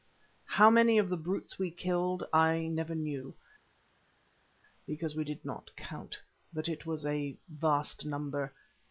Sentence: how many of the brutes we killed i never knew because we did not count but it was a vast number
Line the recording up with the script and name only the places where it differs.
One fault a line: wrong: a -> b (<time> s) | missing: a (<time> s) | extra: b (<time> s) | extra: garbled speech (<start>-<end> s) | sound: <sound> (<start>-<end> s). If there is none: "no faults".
no faults